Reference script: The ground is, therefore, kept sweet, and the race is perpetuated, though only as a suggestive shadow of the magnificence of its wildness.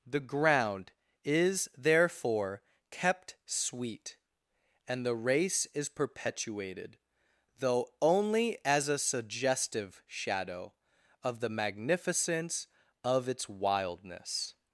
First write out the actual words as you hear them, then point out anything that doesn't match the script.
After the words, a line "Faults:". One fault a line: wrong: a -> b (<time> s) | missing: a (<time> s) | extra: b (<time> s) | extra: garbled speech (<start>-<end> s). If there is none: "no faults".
The ground is, therefore, kept sweet, and the race is perpetuated, though only as a suggestive shadow of the magnificence of its wildness.
Faults:
no faults